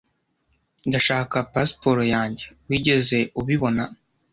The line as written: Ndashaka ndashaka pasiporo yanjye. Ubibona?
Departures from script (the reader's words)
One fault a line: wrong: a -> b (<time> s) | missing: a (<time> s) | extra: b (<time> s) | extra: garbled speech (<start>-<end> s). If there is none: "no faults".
missing: ndashaka (1.4 s)
extra: Wigeze (2.7 s)